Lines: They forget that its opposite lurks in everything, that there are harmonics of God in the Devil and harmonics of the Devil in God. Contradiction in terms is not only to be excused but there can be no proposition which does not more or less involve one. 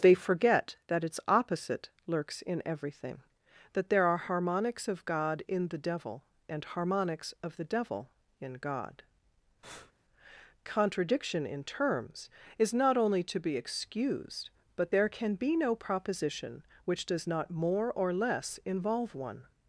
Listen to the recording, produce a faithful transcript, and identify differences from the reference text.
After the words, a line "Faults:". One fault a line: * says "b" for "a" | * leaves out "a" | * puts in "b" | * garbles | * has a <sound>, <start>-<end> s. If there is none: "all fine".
They forget that its opposite lurks in everything, that there are harmonics of God in the Devil and harmonics of the Devil in God. Contradiction in terms is not only to be excused but there can be no proposition which does not more or less involve one.
Faults:
* has a breath, 9.6-9.9 s